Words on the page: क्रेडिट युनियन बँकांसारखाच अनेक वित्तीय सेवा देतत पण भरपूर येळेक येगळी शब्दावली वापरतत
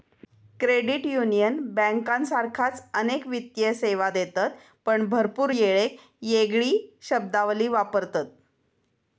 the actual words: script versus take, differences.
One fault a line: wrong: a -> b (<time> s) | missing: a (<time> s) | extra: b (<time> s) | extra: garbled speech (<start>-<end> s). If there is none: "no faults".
no faults